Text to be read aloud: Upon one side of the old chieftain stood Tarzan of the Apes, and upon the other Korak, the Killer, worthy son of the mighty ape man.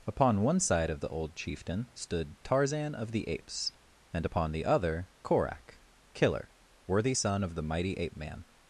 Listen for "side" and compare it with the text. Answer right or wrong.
right